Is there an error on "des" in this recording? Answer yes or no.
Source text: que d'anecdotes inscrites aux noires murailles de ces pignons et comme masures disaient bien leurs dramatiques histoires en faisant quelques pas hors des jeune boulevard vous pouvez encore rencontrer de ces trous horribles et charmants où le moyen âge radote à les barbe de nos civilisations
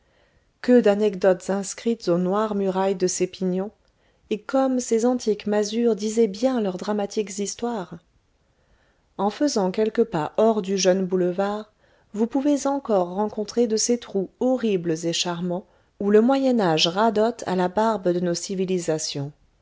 yes